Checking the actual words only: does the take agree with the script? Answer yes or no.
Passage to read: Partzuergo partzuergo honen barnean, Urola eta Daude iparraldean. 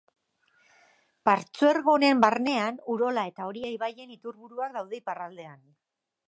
no